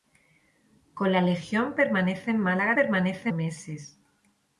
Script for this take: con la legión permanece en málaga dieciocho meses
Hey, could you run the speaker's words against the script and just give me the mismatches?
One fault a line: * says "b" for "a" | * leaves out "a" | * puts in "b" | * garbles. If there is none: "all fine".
* says "permanece" for "dieciocho"